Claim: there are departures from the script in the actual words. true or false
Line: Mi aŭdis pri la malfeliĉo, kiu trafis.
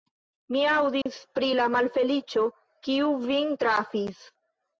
true